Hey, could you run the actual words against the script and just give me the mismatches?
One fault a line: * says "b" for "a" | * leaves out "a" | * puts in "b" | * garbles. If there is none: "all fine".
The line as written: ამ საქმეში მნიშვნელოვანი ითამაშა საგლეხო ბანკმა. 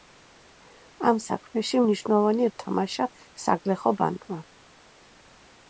all fine